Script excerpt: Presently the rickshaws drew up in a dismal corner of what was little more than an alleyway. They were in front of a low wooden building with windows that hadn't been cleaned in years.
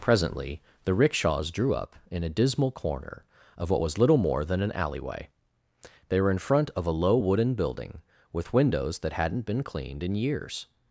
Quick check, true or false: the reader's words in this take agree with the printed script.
true